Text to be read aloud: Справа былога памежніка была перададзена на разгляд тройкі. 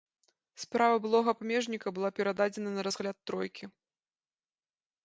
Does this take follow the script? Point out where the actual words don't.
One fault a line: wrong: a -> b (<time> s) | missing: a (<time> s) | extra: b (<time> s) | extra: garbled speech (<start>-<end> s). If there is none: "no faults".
no faults